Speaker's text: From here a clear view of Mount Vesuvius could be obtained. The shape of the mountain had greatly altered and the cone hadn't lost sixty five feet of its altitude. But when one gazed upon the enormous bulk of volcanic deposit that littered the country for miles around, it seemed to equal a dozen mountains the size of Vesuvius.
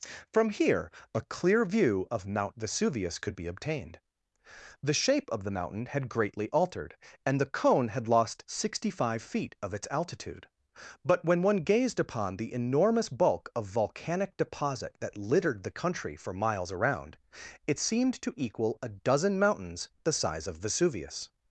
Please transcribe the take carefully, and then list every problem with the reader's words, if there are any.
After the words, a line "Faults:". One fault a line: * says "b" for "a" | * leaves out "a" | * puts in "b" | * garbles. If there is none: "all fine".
From here a clear view of Mount Vesuvius could be obtained. The shape of the mountain had greatly altered and the cone had lost sixty five feet of its altitude. But when one gazed upon the enormous bulk of volcanic deposit that littered the country for miles around, it seemed to equal a dozen mountains the size of Vesuvius.
Faults:
* says "had" for "hadn't"